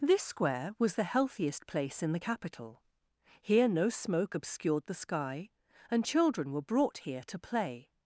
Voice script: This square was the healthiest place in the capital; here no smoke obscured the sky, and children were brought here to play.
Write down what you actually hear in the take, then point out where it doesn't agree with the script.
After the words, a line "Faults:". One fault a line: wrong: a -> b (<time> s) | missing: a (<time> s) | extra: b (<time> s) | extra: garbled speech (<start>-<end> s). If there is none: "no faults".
This square was the healthiest place in the capital; here no smoke obscured the sky, and children were brought here to play.
Faults:
no faults